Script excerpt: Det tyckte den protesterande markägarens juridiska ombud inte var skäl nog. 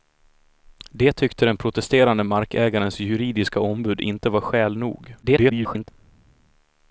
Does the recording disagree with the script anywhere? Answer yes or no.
yes